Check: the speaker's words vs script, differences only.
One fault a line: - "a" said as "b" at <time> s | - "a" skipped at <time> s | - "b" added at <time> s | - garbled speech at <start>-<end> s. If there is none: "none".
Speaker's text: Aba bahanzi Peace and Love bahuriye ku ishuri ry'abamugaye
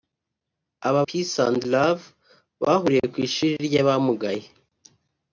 - "bahanzi" skipped at 1.0 s